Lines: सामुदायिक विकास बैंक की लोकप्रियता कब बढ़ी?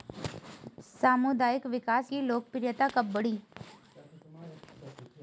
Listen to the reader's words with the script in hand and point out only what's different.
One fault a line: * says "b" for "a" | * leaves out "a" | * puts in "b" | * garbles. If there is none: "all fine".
* leaves out "बैंक"